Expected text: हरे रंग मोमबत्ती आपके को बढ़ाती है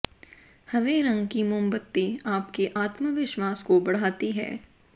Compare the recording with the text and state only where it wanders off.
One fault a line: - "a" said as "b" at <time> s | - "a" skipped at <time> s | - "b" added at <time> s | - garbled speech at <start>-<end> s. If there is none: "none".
- "की" added at 1.3 s
- "आत्मविश्वास" added at 2.7 s